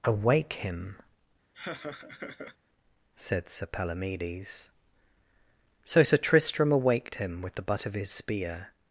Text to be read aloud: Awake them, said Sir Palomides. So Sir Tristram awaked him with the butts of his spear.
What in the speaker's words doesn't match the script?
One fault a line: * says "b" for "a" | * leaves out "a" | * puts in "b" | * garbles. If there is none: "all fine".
* says "him" for "them"
* says "butt" for "butts"